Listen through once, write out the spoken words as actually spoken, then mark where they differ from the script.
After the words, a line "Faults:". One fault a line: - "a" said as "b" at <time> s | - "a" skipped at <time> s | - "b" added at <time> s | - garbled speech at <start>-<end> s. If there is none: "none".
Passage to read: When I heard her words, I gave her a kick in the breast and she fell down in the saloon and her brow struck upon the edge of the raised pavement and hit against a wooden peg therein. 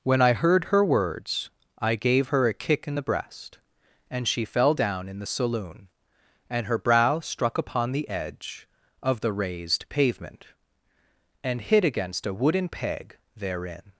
When I heard her words, I gave her a kick in the breast and she fell down in the saloon and her brow struck upon the edge of the raised pavement and hit against a wooden peg therein.
Faults:
none